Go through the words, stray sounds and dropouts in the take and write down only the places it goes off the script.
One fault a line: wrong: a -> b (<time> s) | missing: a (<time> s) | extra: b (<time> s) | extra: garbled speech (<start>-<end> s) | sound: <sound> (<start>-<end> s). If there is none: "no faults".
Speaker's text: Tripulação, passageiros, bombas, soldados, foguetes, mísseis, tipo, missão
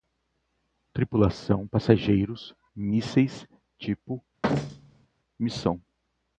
missing: bombas soldados foguetes (2.5 s)
sound: thud (4.4-5.1 s)